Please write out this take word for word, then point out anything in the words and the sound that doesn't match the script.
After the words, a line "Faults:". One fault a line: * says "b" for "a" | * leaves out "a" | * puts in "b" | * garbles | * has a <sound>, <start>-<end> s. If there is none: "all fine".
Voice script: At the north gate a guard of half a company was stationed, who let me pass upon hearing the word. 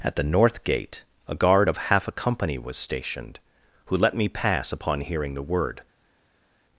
At the north gate a guard of half a company was stationed, who let me pass upon hearing the word.
Faults:
all fine